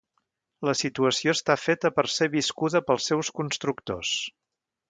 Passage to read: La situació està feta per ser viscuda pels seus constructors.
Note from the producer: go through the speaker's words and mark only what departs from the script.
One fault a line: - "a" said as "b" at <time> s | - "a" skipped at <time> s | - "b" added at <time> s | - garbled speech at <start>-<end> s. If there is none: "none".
none